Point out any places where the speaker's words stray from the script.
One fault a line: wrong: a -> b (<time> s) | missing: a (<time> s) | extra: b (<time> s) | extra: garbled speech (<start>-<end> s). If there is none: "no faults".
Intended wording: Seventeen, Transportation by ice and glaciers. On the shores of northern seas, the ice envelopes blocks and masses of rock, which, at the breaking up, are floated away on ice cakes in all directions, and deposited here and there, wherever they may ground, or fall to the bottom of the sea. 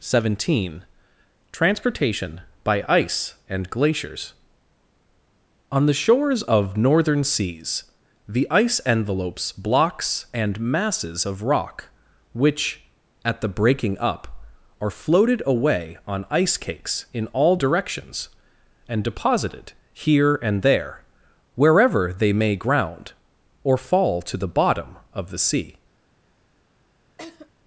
no faults